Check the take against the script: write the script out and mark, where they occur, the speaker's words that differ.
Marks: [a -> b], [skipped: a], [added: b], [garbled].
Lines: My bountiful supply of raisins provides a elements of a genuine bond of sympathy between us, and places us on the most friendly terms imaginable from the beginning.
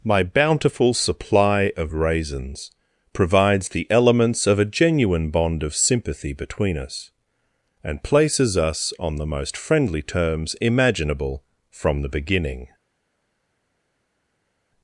My bountiful supply of raisins provides [a -> the] elements of a genuine bond of sympathy between us, and places us on the most friendly terms imaginable from the beginning.